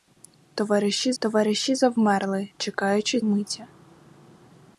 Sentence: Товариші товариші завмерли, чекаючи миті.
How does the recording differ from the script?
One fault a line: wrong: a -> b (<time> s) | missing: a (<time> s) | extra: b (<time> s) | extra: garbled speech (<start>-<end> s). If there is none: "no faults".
no faults